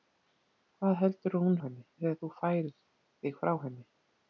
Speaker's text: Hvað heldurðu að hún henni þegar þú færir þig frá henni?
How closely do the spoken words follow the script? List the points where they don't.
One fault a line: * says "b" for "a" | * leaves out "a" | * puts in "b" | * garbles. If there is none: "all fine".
all fine